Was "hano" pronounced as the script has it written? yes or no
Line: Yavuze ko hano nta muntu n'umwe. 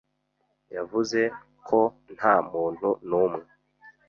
no